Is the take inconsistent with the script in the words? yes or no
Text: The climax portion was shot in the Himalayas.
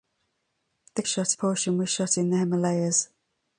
yes